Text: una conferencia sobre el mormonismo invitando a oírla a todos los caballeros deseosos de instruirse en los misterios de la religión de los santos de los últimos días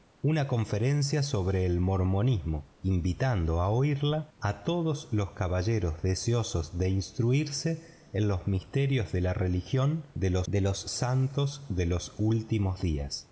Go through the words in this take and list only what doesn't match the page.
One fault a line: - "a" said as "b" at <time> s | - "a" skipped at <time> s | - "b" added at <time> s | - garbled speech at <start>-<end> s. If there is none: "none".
- "de los" added at 10.5 s